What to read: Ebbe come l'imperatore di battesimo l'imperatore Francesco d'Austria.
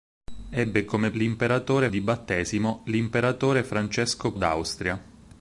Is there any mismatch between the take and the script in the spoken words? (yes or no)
no